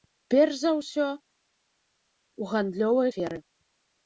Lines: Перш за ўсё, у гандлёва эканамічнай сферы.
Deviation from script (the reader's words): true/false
true